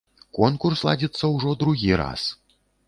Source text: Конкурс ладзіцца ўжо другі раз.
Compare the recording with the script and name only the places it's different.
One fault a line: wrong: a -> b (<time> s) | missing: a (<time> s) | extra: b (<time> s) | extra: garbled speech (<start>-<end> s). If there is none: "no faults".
no faults